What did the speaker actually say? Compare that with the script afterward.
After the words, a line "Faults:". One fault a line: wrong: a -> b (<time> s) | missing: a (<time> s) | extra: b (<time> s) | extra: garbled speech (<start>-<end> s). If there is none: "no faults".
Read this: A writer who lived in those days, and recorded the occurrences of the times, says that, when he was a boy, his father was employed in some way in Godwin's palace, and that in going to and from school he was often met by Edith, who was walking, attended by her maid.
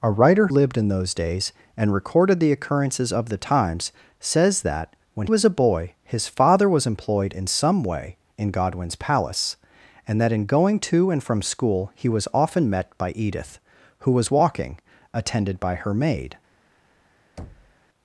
A writer lived in those days, and recorded the occurrences of the times, says that, when was a boy, his father was employed in some way in Godwin's palace, and that in going to and from school he was often met by Edith, who was walking, attended by her maid.
Faults:
missing: who (0.5 s)
missing: he (5.3 s)